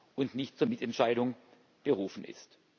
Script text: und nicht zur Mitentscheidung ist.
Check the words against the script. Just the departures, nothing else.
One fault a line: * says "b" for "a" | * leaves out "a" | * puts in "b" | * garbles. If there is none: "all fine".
* puts in "berufen"